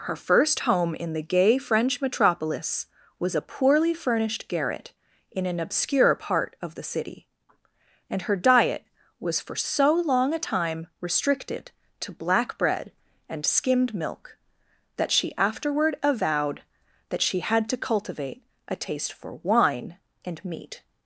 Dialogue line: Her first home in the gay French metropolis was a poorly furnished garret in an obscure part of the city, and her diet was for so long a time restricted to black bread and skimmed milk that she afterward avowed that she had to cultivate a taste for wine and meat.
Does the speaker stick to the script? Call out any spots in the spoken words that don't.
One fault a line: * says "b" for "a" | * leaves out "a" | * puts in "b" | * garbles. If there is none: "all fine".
all fine